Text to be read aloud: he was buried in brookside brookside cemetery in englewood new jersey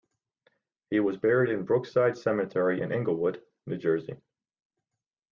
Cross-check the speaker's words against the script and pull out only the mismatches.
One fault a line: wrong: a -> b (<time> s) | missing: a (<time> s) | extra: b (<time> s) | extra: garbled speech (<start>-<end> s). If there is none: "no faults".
missing: brookside (2.2 s)